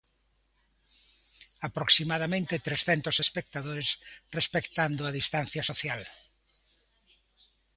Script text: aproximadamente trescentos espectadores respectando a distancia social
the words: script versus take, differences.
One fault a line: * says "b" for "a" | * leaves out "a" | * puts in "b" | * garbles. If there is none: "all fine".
all fine